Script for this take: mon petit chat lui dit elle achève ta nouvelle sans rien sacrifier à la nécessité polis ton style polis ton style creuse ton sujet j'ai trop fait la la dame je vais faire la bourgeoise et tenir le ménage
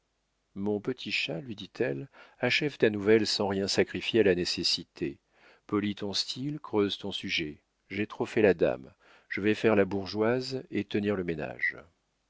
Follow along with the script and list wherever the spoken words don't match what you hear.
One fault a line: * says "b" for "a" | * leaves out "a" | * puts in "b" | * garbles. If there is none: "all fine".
* leaves out "polis ton style"
* leaves out "la"